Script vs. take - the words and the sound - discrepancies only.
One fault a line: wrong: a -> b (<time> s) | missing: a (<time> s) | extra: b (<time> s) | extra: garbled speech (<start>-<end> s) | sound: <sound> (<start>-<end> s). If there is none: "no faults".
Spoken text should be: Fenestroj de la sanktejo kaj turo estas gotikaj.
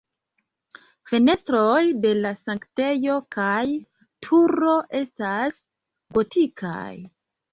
no faults